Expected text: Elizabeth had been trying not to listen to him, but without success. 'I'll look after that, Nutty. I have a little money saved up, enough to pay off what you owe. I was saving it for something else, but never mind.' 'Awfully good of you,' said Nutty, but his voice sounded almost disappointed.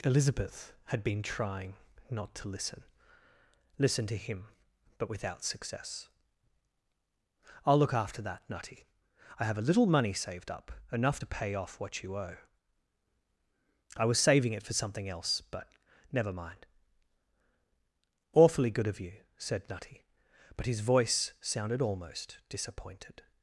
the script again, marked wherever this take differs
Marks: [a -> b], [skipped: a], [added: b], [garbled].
Elizabeth had been trying not to listen [added: listen] to him, but without success. 'I'll look after that, Nutty. I have a little money saved up, enough to pay off what you owe. I was saving it for something else, but never mind.' 'Awfully good of you,' said Nutty, but his voice sounded almost disappointed.